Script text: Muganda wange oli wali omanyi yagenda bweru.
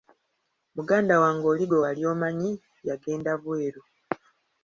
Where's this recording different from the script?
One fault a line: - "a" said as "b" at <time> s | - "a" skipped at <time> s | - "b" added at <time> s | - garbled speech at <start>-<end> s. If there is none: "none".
- "gwe" added at 1.7 s